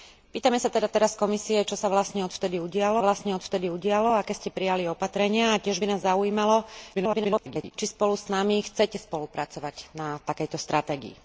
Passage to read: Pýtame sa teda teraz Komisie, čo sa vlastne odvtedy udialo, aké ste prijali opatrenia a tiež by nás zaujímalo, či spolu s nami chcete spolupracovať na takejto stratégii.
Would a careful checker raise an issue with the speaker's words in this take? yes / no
yes